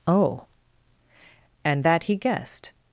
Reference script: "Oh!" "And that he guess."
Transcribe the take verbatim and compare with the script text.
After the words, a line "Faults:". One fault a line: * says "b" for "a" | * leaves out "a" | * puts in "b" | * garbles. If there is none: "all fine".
"Oh!" "And that he guessed."
Faults:
* says "guessed" for "guess"